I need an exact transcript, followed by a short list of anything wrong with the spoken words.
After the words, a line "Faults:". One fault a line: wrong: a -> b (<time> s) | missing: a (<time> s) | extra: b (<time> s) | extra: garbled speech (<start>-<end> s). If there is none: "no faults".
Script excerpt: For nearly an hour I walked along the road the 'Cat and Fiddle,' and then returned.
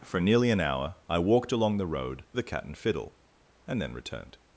For nearly an hour I walked along the road the 'Cat and Fiddle,' and then returned.
Faults:
no faults